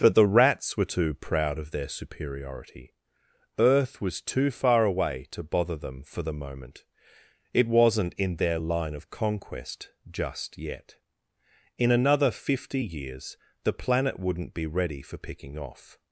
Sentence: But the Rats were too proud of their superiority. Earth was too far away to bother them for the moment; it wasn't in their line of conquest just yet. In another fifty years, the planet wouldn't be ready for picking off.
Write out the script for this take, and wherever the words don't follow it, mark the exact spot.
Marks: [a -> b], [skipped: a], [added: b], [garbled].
But the Rats were too proud of their superiority. Earth was too far away to bother them for the moment; it wasn't in their line of conquest just yet. In another fifty years, the planet wouldn't be ready for picking off.